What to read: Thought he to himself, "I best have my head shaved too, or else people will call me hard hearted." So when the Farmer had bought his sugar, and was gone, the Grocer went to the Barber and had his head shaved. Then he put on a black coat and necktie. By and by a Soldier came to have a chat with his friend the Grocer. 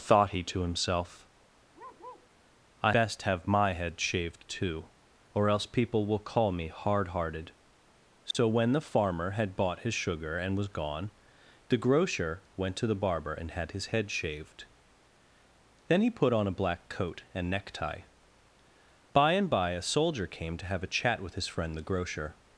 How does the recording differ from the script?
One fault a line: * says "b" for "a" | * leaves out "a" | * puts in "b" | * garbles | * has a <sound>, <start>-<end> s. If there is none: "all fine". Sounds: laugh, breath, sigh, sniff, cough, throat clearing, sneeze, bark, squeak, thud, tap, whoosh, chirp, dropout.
* has a bark, 1.7-2.3 s
* has a dropout, 8.3-8.3 s